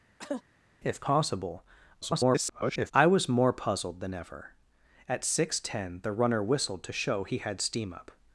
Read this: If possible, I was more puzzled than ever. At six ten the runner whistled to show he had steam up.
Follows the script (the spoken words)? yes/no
no